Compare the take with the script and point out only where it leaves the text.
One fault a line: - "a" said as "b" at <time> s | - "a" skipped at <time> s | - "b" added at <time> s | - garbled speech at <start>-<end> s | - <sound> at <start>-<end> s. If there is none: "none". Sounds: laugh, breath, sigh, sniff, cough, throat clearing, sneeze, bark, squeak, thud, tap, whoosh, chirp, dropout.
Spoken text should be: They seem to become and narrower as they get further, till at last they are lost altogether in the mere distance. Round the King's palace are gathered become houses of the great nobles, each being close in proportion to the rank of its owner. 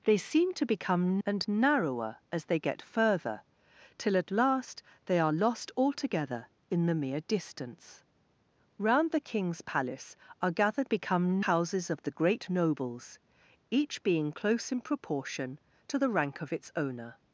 none